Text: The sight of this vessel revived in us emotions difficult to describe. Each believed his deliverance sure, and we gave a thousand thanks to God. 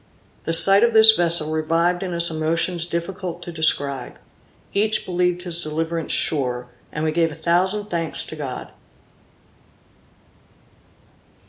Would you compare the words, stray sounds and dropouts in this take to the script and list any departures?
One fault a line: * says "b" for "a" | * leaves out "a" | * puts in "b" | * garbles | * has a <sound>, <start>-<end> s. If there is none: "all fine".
all fine